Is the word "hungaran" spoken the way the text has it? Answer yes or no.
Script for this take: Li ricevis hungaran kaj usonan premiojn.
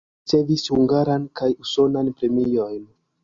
yes